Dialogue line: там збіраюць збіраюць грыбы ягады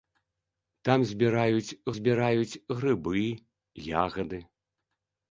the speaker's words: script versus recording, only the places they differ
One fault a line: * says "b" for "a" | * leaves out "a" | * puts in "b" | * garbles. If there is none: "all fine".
all fine